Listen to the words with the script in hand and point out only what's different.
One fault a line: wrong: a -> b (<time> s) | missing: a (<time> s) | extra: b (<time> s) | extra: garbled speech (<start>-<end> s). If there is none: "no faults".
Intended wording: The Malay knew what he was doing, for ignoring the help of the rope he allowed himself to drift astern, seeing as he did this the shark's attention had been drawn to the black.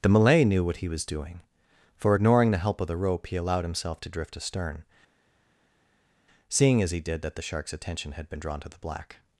wrong: this -> that (7.2 s)